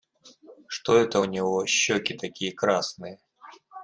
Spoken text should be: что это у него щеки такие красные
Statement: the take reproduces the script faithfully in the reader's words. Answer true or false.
true